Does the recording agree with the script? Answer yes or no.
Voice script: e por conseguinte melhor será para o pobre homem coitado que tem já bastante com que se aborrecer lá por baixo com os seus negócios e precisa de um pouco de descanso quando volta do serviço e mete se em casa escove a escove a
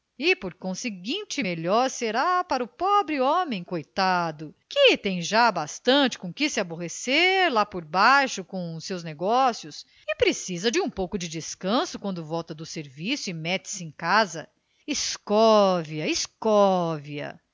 yes